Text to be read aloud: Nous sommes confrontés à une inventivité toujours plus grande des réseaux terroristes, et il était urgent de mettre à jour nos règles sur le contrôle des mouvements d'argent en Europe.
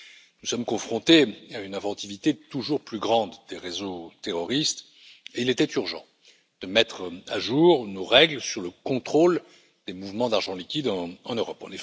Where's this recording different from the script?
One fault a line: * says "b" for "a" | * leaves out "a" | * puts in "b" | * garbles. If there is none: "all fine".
* puts in "liquide"